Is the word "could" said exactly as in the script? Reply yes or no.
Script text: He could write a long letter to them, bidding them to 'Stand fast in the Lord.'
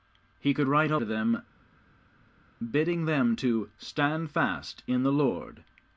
yes